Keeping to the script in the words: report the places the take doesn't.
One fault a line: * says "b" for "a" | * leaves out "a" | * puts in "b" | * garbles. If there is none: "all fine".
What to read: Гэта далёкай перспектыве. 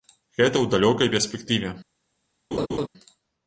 * puts in "ў"